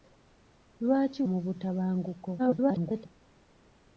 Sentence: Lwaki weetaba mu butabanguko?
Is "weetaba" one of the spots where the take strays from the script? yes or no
yes